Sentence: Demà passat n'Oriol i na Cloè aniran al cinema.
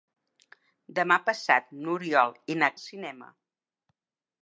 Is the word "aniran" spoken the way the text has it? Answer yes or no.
no